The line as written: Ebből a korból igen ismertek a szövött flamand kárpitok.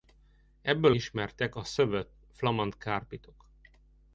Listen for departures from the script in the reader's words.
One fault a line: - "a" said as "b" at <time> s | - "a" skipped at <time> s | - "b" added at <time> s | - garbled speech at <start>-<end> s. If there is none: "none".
- "a korból igen" skipped at 0.9 s